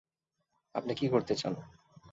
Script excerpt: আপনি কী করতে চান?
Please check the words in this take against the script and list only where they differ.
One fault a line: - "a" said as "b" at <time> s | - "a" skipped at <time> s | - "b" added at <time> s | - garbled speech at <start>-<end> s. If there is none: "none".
none